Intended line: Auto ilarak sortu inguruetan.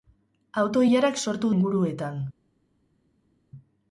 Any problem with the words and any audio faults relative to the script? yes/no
no